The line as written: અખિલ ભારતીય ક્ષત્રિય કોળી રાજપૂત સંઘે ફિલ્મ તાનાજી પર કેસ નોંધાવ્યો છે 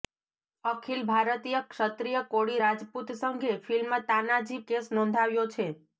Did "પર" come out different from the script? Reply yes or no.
yes